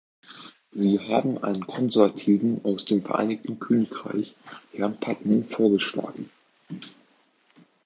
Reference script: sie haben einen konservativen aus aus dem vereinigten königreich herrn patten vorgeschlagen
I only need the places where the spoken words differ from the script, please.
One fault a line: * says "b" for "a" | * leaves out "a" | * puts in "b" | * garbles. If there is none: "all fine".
* leaves out "aus"